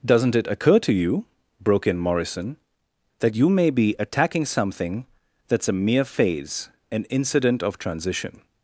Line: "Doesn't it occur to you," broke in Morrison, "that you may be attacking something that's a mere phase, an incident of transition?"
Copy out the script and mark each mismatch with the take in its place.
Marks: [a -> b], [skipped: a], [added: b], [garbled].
"Doesn't it occur to you," broke in Morrison, "that you may be attacking something that's a mere phase, an incident of transition?"